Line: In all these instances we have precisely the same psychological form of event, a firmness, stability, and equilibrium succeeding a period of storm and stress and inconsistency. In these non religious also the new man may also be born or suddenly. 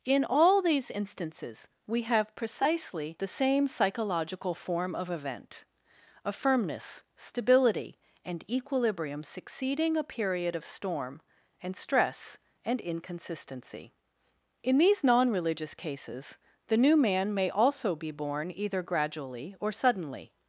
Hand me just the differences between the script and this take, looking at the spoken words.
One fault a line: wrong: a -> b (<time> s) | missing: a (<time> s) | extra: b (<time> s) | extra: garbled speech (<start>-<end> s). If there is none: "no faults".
wrong: also -> cases (15.7 s)
extra: either gradually (18.6 s)